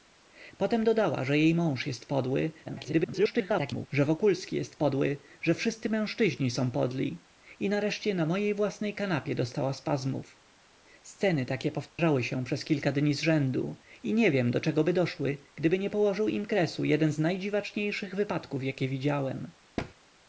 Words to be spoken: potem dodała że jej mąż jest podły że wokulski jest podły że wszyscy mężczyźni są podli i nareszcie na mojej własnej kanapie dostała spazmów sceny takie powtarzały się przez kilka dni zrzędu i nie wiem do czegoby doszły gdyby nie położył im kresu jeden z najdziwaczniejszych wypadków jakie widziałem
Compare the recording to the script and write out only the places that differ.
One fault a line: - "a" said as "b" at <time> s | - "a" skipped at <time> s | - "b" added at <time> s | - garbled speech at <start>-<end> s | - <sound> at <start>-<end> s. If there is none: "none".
- garbled speech at 2.7-3.9 s
- dropout at 11.9-12.0 s
- thud at 19.8-19.9 s